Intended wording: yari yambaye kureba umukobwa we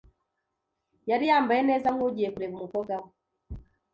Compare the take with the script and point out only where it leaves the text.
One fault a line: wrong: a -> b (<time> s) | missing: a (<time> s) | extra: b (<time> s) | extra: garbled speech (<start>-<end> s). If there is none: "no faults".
extra: neza nkugiye (1.7 s)